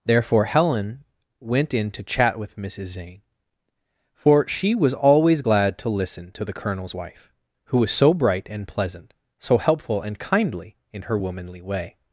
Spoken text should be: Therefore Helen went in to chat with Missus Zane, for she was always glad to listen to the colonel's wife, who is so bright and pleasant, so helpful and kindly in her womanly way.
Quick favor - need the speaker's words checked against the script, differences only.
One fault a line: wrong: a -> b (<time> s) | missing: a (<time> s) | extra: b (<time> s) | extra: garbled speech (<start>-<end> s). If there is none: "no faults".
wrong: is -> was (7.8 s)